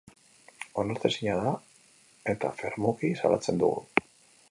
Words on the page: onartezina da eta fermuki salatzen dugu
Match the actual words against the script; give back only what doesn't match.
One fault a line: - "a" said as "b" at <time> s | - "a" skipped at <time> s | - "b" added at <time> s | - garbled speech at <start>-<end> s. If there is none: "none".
none